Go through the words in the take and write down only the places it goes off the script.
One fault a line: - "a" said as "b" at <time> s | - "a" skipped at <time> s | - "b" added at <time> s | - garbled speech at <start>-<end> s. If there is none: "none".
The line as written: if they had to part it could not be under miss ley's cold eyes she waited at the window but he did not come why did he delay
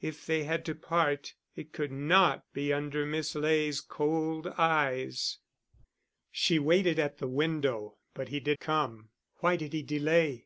- "not" skipped at 8.6 s